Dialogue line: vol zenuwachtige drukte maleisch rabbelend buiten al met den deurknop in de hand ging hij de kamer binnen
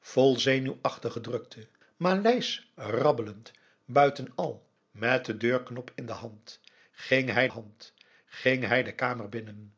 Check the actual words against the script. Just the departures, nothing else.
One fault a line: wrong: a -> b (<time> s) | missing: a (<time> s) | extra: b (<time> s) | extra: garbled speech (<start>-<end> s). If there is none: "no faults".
extra: hand ging hij (7.5 s)